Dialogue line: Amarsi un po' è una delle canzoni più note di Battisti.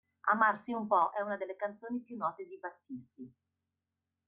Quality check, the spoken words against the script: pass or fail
pass